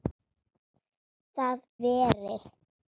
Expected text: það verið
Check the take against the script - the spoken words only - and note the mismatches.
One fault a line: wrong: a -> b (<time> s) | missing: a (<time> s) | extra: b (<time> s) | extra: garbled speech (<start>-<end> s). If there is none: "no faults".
no faults